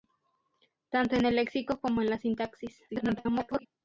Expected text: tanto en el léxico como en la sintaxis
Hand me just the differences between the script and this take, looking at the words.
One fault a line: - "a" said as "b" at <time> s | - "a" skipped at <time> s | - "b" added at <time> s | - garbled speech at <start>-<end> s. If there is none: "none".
- garbled speech at 2.9-3.7 s